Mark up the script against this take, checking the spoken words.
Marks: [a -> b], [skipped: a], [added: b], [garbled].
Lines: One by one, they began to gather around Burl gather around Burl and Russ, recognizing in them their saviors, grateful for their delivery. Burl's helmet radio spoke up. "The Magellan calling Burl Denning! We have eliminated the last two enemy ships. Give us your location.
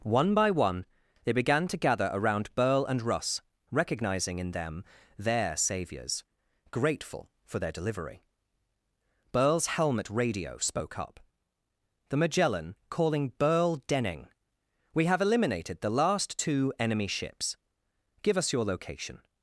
One by one, they began to gather around Burl [skipped: gather around Burl] and Russ, recognizing in them their saviors, grateful for their delivery. Burl's helmet radio spoke up. "The Magellan calling Burl Denning! We have eliminated the last two enemy ships. Give us your location.